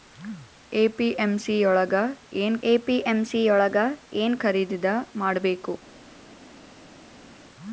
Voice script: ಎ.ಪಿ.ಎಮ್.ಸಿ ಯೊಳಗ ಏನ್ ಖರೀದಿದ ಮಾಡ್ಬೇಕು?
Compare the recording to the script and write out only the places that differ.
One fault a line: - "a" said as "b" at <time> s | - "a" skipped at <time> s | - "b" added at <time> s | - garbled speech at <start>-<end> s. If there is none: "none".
- "ಎ.ಪಿ.ಎಮ್.ಸಿ ಯೊಳಗ ಏನ್" added at 2.6 s